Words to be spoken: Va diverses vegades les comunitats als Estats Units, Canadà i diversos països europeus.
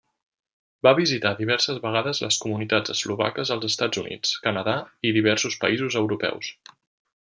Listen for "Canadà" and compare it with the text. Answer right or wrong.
right